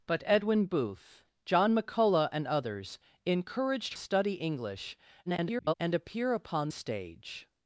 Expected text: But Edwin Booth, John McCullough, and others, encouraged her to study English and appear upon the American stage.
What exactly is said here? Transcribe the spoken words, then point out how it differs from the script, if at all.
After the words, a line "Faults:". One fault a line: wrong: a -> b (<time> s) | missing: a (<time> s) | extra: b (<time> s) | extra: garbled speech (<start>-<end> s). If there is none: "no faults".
But Edwin Booth, John McCullough, and others, encouraged study English [garbled] and appear upon stage.
Faults:
missing: her to (3.9 s)
extra: garbled speech (5.3-5.7 s)
missing: the American (6.7 s)